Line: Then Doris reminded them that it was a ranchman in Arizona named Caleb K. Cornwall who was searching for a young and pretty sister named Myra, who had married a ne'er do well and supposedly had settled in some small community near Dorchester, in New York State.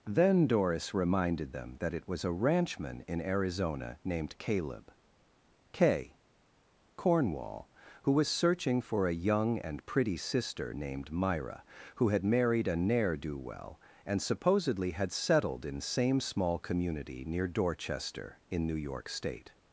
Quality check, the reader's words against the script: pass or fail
fail